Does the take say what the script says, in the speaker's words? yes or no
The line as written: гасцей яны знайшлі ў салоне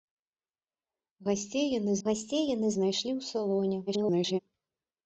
no